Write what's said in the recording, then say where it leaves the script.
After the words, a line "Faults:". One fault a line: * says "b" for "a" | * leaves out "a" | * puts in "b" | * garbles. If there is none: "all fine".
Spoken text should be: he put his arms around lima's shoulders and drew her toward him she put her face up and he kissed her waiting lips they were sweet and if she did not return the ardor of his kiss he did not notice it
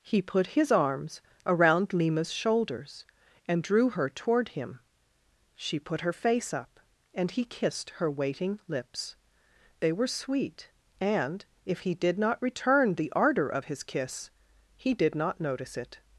he put his arms around lima's shoulders and drew her toward him she put her face up and he kissed her waiting lips they were sweet and if he did not return the ardor of his kiss he did not notice it
Faults:
* says "he" for "she"